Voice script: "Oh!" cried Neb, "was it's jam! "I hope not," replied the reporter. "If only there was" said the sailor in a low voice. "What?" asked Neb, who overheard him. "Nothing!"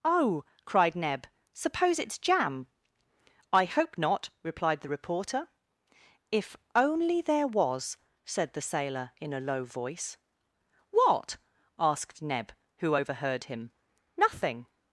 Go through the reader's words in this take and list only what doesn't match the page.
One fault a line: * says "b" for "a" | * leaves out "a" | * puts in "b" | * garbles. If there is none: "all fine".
* says "suppose" for "was"